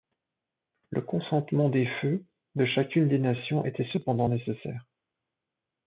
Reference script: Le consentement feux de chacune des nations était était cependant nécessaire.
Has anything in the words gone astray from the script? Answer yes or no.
yes